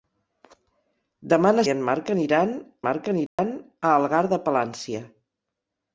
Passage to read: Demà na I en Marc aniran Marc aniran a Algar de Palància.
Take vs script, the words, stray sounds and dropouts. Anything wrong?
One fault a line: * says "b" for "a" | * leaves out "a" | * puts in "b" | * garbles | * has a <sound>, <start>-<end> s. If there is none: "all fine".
* has a dropout, 3.3-3.4 s